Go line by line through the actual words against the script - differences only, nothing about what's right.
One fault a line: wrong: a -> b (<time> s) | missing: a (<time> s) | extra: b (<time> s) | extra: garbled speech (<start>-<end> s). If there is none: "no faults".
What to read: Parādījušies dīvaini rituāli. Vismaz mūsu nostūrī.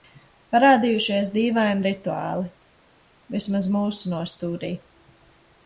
no faults